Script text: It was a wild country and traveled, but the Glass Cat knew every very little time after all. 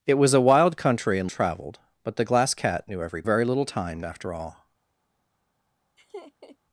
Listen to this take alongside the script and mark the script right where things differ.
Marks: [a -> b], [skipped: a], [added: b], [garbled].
It was a wild country and traveled, but the Glass Cat knew every very little time after all.